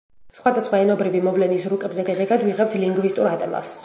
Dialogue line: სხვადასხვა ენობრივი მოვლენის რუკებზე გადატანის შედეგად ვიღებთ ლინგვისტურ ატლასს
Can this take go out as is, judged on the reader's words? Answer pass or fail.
fail